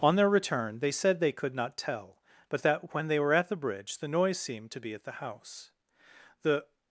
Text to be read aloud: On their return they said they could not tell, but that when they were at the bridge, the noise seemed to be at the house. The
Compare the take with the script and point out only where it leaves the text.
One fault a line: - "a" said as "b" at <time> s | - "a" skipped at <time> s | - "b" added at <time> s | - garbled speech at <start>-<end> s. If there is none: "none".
none